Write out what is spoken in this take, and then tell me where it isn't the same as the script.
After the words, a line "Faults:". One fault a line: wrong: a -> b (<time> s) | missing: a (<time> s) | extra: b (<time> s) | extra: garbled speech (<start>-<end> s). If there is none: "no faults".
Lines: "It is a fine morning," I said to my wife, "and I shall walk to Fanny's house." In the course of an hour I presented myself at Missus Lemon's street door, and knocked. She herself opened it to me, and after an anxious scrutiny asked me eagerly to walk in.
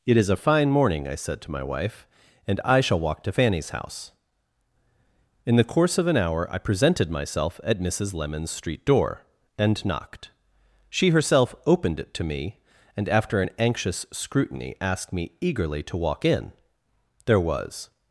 "It is a fine morning," I said to my wife, "and I shall walk to Fanny's house." In the course of an hour I presented myself at Missus Lemon's street door, and knocked. She herself opened it to me, and after an anxious scrutiny asked me eagerly to walk in. There was
Faults:
extra: There was (17.2 s)